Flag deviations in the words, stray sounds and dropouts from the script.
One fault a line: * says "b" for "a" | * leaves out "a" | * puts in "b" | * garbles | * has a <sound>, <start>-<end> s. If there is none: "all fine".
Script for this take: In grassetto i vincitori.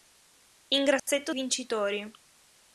* has a dropout, 1.0-1.1 s